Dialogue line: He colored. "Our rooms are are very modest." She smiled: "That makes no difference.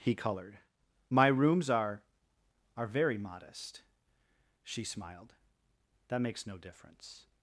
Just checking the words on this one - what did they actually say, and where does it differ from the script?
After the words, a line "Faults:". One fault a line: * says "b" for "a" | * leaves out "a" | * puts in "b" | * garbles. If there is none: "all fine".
He colored. "My rooms are are very modest." She smiled: "That makes no difference.
Faults:
* says "My" for "Our"